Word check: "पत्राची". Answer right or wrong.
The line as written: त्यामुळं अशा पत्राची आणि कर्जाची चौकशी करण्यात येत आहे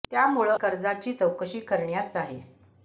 wrong